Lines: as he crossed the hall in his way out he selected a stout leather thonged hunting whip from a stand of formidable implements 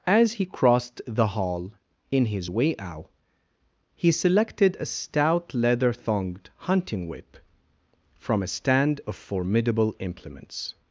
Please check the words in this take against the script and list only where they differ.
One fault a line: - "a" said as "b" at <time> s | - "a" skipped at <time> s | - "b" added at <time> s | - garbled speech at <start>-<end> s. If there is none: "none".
none